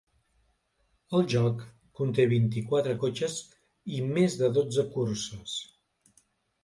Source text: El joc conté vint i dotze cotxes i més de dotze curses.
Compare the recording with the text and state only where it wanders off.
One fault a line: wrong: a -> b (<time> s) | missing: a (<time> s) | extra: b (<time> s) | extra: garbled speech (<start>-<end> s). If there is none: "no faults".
wrong: dotze -> quatre (2.7 s)